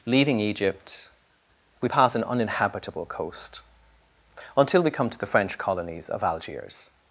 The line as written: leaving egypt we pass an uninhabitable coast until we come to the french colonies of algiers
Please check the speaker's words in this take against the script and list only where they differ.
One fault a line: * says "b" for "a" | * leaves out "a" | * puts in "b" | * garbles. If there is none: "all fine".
all fine